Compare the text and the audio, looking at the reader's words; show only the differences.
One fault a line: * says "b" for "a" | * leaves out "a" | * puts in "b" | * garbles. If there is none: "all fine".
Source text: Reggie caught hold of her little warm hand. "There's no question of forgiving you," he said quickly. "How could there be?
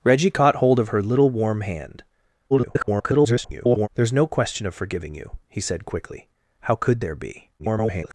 * garbles
* garbles